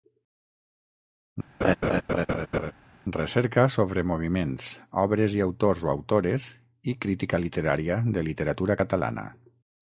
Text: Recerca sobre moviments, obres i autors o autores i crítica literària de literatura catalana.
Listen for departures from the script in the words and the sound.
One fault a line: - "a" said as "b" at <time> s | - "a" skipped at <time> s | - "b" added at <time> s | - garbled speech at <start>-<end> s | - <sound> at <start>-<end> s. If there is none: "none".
- laugh at 1.6-2.7 s